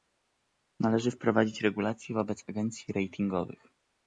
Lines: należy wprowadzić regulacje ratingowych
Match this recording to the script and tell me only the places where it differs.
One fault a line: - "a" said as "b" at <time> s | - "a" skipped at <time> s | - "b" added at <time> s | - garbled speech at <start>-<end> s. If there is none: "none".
- "wobec agencji" added at 2.1 s